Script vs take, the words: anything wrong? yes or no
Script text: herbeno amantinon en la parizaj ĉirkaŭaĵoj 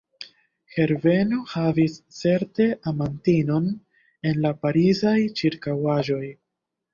yes